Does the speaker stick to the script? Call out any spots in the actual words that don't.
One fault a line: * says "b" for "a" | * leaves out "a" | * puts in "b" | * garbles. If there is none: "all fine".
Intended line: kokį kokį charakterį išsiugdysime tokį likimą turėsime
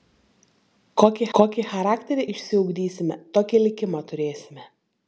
all fine